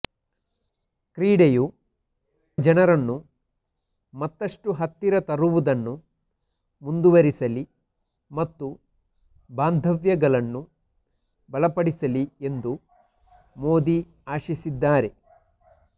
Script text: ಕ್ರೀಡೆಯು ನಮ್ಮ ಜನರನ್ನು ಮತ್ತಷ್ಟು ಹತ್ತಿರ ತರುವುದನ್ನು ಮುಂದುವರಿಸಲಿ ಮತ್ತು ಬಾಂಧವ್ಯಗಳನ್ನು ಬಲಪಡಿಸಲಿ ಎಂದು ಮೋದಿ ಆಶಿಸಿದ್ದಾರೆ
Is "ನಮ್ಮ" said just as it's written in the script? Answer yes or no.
no